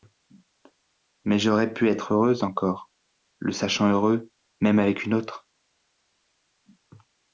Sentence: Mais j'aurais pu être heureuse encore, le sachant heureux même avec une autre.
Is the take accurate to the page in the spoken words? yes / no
yes